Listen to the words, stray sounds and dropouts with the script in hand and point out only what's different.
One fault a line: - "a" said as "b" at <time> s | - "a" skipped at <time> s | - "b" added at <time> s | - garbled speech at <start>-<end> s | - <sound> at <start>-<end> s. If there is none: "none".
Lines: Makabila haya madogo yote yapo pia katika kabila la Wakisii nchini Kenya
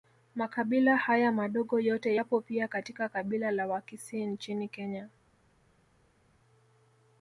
none